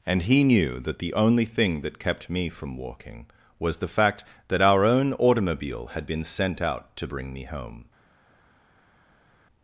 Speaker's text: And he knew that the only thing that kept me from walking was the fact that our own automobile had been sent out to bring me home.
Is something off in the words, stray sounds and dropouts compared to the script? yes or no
no